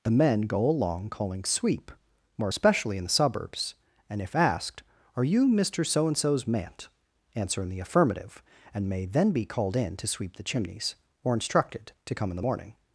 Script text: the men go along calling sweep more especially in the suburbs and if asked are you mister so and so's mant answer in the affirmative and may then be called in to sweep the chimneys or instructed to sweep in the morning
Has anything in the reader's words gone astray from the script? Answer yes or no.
yes